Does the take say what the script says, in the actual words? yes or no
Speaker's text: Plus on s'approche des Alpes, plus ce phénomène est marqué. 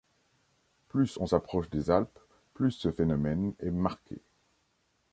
yes